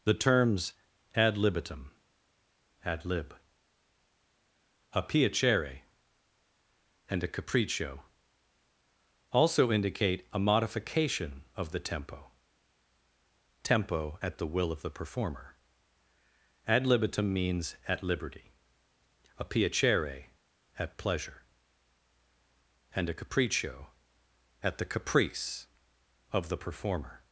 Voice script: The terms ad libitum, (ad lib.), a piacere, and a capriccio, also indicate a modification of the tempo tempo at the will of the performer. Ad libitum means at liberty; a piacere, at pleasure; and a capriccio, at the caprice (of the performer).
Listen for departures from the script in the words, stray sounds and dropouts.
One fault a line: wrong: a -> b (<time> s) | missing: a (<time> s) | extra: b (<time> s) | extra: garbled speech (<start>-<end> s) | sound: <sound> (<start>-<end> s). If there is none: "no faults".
no faults